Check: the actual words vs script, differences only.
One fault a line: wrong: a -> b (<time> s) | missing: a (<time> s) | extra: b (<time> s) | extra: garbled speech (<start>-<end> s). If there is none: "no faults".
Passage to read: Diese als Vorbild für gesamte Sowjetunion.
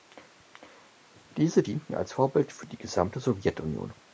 extra: dienten (1.6 s)
extra: die (2.7 s)